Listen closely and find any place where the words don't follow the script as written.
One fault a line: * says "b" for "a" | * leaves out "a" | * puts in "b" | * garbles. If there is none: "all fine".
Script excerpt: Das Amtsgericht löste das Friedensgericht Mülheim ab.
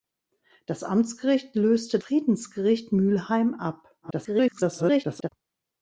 * leaves out "das"
* garbles